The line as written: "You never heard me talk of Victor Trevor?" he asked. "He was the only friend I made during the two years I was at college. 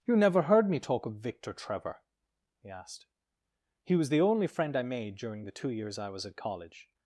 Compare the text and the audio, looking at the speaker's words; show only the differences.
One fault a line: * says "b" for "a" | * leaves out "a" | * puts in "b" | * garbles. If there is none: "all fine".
all fine